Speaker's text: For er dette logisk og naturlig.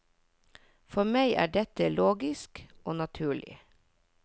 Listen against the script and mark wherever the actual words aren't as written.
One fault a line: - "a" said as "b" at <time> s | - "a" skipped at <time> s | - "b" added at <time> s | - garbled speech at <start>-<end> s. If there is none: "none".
- "meg" added at 1.1 s